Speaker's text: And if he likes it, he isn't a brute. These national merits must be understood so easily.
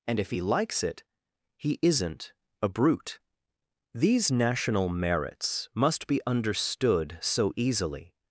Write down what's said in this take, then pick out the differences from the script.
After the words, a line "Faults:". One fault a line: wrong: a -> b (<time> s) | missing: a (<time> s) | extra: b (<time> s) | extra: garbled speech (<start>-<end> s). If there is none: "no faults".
And if he likes it, he isn't a brute. These national merits must be understood so easily.
Faults:
no faults